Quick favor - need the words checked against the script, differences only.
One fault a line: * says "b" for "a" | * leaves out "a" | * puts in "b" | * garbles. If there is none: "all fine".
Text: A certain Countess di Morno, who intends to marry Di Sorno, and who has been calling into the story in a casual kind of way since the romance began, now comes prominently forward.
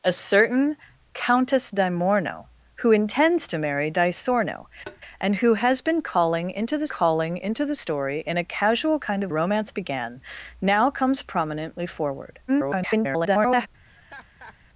* puts in "calling into the"
* leaves out "way since the"
* garbles